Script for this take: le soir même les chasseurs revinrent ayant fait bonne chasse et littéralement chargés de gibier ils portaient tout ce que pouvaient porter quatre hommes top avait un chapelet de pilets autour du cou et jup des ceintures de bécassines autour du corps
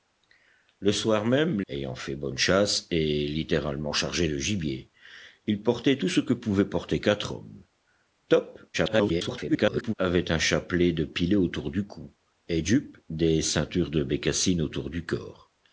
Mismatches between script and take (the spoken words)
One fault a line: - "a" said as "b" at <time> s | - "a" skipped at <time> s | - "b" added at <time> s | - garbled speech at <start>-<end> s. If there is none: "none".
- "les chasseurs revinrent" skipped at 1.6 s
- garbled speech at 8.7-9.9 s